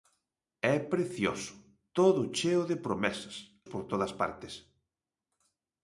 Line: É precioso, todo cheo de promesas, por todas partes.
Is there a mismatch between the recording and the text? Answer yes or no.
no